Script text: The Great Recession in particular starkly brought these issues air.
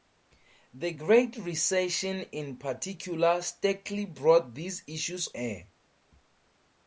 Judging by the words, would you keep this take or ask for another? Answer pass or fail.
pass